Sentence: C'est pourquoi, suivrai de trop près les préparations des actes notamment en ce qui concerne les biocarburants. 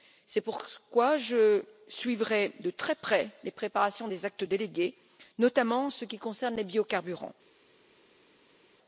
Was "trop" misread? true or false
true